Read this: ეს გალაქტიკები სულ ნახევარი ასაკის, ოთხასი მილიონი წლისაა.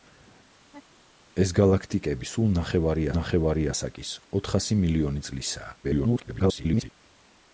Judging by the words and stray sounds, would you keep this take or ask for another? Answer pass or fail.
fail